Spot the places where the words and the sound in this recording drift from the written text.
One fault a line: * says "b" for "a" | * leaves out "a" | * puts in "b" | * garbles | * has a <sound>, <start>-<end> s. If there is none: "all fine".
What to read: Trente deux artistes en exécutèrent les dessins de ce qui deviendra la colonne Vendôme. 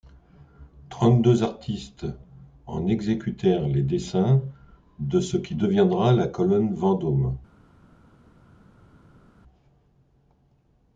all fine